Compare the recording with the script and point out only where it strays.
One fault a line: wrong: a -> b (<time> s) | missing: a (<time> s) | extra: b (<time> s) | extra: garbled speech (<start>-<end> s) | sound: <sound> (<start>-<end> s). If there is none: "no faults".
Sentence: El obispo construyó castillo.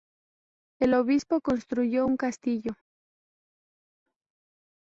extra: un (2.0 s)